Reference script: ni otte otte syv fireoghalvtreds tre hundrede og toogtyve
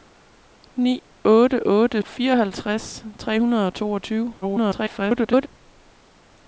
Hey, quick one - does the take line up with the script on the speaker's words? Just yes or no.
no